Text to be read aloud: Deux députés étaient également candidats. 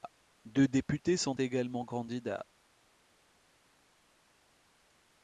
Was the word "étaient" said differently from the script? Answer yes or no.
yes